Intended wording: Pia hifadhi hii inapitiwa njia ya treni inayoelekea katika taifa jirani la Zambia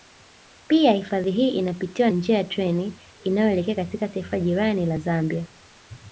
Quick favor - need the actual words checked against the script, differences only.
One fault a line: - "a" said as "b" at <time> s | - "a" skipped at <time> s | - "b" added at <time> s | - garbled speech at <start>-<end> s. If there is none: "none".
none